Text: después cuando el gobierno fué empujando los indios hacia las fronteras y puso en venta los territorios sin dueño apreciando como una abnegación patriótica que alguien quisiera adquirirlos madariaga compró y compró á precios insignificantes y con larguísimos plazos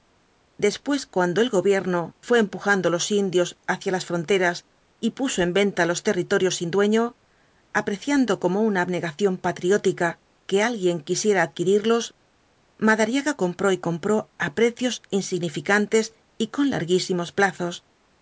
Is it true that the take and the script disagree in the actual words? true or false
false